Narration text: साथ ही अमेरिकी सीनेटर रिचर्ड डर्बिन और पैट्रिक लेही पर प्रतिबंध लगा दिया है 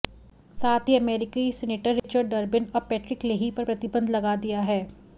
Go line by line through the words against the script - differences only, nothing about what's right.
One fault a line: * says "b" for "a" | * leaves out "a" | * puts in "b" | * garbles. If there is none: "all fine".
all fine